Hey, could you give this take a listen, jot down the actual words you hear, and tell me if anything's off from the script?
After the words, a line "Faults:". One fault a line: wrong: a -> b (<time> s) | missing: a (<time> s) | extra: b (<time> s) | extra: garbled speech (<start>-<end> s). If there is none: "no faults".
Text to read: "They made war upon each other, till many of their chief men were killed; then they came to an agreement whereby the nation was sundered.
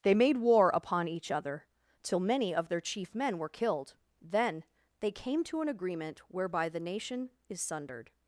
"They made war upon each other, till many of their chief men were killed; then they came to an agreement whereby the nation is sundered.
Faults:
wrong: was -> is (7.5 s)